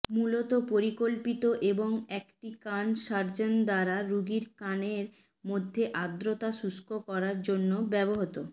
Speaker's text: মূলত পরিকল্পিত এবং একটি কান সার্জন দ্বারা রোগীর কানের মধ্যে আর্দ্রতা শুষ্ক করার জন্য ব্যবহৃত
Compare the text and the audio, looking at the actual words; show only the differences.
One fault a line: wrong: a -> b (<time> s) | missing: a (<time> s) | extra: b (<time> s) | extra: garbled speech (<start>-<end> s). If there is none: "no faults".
no faults